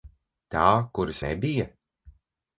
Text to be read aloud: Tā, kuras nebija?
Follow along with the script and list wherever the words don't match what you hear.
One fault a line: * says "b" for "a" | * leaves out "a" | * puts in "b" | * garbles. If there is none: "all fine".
all fine